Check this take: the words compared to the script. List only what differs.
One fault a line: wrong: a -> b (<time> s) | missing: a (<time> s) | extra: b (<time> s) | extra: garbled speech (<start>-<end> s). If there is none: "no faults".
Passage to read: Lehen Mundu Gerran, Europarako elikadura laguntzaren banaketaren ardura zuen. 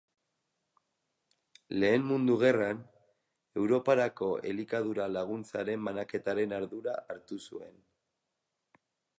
extra: hartu (7.1 s)